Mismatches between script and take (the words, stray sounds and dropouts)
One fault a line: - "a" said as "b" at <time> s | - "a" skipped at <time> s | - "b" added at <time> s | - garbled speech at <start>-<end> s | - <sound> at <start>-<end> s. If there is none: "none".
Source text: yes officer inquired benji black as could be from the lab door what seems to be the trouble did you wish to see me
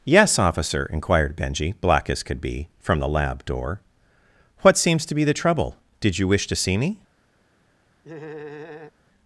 - laugh at 8.0-8.9 s